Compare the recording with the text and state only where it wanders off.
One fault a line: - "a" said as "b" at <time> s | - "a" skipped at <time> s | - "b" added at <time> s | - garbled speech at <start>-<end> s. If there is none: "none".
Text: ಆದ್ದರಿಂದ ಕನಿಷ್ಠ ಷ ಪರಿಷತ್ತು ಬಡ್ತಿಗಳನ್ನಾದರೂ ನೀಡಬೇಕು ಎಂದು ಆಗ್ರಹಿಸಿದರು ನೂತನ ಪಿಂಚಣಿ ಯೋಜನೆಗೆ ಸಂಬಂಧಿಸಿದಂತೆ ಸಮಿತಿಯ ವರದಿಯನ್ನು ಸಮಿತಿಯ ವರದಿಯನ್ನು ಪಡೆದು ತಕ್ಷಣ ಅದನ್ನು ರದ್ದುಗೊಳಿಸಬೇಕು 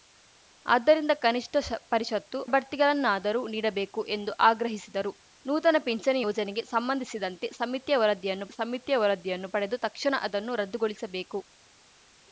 none